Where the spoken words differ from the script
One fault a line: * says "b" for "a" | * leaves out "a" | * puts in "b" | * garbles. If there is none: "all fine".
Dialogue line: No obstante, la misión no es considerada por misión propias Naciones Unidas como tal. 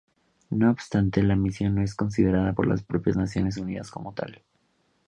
* says "las" for "misión"